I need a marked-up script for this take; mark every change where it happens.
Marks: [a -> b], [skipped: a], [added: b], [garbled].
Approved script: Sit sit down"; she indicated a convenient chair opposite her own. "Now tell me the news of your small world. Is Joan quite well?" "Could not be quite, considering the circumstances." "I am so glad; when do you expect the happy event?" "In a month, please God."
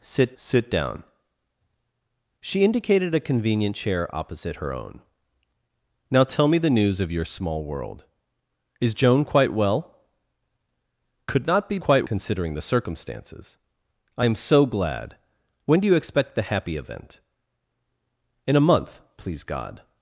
Sit sit down"; she indicated a convenient chair opposite her own. "Now tell me the news of your small world. Is Joan quite well?" "Could not be quite, considering the circumstances." "I am so glad; when do you expect the happy event?" "In a month, please God."